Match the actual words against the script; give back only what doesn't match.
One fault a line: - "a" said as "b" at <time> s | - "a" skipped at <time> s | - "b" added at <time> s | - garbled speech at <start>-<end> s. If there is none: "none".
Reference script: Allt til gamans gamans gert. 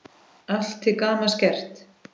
- "gamans" skipped at 1.4 s